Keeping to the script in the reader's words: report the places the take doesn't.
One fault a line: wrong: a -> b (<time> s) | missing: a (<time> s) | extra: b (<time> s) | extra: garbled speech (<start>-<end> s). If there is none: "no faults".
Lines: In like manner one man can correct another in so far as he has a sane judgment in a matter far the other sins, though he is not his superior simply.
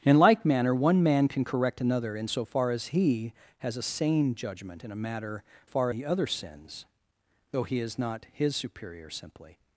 no faults